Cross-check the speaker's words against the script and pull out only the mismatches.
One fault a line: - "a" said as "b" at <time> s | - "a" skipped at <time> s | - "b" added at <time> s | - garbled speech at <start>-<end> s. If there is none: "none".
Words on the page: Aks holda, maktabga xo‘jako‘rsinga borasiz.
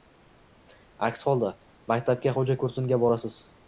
none